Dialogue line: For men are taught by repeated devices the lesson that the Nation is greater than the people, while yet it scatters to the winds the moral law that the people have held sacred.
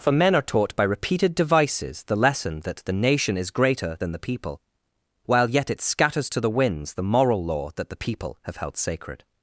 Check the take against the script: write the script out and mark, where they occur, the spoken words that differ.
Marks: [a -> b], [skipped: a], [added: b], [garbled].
For men are taught by repeated devices the lesson that the Nation is greater than the people, while yet it scatters to the winds the moral law that the people have held sacred.